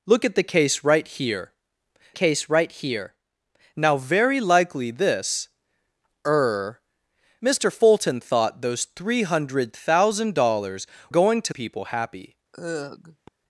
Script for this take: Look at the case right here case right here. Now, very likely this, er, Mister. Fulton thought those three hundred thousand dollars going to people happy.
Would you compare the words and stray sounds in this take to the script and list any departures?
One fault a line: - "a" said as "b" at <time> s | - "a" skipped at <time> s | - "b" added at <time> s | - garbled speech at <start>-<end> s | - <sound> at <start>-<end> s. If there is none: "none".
- sigh at 12.5-13.3 s